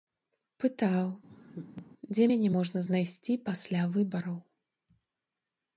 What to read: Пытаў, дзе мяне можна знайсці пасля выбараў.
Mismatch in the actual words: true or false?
false